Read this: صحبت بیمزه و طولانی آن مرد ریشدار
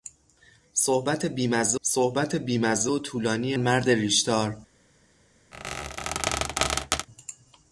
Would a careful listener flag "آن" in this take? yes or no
yes